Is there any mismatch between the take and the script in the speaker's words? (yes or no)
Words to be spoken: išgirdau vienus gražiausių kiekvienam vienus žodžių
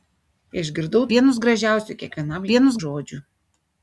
no